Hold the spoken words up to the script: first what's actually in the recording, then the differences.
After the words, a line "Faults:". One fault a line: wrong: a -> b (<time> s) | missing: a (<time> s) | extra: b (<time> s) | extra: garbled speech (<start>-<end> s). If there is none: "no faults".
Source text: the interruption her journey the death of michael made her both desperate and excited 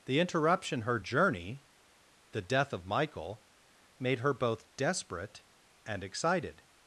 the interruption her journey the death of michael made her both desperate and excited
Faults:
no faults